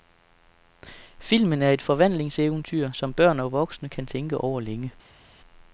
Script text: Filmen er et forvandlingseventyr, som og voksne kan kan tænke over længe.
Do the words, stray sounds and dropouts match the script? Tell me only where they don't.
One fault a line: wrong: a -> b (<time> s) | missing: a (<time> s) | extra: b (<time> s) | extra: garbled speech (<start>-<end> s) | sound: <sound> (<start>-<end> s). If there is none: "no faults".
extra: børn (3.1 s)
missing: kan (4.1 s)